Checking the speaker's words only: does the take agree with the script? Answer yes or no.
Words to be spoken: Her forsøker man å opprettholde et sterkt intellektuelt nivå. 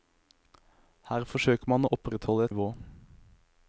no